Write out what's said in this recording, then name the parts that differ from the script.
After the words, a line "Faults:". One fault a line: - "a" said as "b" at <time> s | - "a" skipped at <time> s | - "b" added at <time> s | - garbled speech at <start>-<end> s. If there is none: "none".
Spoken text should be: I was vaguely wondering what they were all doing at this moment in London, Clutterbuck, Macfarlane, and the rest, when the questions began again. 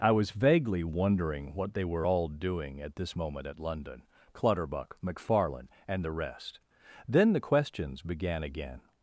I was vaguely wondering what they were all doing at this moment at London, Clutterbuck, Macfarlane, and the rest, then the questions began again.
Faults:
- "in" said as "at" at 3.5 s
- "when" said as "then" at 7.1 s